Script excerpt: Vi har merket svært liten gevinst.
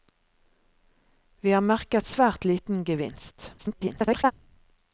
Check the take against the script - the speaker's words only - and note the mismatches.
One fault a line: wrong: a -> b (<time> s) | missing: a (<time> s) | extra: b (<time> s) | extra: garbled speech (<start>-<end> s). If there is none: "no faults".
extra: garbled speech (3.6-4.3 s)